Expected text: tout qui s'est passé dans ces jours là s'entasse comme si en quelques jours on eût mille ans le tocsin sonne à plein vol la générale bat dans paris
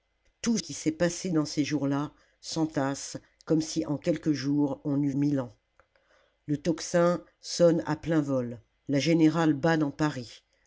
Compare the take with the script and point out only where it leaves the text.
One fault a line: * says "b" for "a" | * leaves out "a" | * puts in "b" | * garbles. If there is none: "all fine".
all fine